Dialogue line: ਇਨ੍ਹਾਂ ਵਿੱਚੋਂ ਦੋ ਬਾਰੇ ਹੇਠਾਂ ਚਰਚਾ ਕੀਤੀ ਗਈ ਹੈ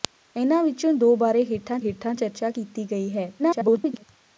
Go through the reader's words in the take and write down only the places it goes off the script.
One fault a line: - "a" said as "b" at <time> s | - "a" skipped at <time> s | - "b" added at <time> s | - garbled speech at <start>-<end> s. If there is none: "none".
- "ਹੇਠਾਂ" added at 1.8 s
- garbled speech at 3.4-4.0 s